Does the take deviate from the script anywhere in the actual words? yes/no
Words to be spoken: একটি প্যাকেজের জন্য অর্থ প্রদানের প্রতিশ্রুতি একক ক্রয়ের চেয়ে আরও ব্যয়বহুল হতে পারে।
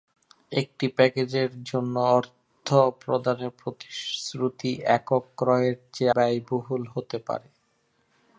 yes